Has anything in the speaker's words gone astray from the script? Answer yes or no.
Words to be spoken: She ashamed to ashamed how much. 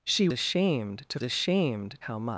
no